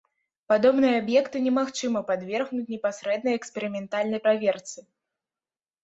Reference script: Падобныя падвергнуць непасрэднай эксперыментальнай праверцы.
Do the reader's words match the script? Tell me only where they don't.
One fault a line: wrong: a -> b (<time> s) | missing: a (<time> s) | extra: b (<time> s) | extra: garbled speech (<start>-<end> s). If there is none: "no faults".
extra: аб'екты немагчыма (1.0 s)